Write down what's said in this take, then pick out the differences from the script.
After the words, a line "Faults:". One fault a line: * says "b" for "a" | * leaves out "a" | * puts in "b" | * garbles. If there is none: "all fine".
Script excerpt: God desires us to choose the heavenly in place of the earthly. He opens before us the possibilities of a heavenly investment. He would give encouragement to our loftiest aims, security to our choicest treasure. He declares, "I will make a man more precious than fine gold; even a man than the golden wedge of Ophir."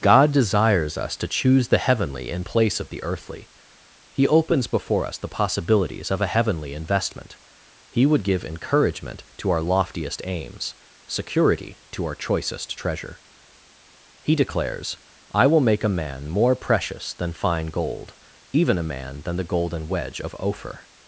God desires us to choose the heavenly in place of the earthly. He opens before us the possibilities of a heavenly investment. He would give encouragement to our loftiest aims, security to our choicest treasure. He declares, "I will make a man more precious than fine gold; even a man than the golden wedge of Ophir."
Faults:
all fine